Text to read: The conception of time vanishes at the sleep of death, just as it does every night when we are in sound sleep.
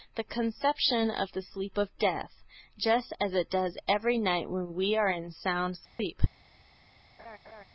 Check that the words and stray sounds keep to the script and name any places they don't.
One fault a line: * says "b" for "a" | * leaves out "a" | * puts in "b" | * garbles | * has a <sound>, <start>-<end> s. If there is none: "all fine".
* leaves out "time vanishes at"
* has a dropout, 5.9-6.0 s
* has a laugh, 7.2-7.6 s